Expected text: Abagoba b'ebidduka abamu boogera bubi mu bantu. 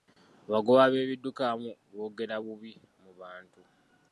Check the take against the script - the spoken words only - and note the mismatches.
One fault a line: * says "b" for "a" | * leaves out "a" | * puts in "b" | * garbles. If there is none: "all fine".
all fine